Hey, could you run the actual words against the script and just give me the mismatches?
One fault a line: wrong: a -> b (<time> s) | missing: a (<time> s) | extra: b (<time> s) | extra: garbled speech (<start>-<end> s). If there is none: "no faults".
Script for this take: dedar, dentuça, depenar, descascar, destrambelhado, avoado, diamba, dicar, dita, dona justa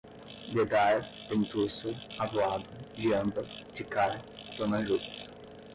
missing: depenar descascar destrambelhado (1.9 s)
missing: dita (4.2 s)